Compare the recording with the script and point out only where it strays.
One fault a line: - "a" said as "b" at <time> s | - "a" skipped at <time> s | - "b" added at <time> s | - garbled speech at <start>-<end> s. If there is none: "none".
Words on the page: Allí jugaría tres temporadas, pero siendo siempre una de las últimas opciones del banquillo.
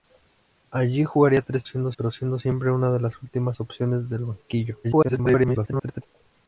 - "temporadas" said as "siendo" at 1.6 s
- garbled speech at 4.8-6.0 s